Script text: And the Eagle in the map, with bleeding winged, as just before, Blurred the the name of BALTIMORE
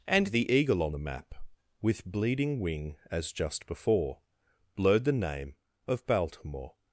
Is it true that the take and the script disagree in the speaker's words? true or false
true